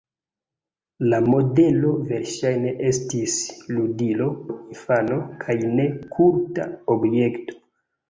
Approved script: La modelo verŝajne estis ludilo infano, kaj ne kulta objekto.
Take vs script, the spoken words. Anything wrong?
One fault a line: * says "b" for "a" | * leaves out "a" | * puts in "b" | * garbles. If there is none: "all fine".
all fine